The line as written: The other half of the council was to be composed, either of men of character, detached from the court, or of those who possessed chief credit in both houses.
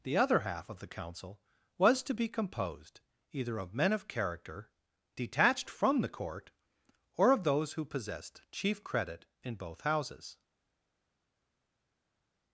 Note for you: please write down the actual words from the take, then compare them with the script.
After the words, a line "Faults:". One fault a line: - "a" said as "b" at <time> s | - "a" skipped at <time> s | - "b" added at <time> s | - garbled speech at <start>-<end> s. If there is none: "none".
The other half of the council was to be composed, either of men of character, detached from the court, or of those who possessed chief credit in both houses.
Faults:
none